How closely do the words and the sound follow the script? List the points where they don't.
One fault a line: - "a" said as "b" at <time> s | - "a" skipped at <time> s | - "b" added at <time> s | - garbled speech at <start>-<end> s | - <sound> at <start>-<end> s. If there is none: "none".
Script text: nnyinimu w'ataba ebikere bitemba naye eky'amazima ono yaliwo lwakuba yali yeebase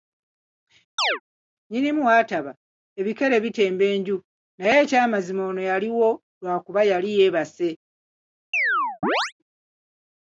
- chirp at 1.0-1.2 s
- "enju" added at 3.9 s
- chirp at 8.5-9.3 s